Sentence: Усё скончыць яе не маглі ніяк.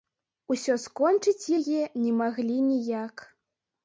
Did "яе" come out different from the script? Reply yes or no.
no